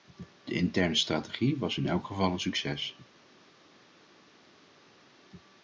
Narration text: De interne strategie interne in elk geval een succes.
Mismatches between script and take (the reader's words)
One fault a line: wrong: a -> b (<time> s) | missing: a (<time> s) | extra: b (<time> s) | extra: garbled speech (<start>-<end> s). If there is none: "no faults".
wrong: interne -> was (1.6 s)